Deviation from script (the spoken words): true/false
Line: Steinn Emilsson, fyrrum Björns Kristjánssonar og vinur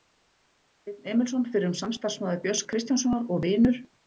true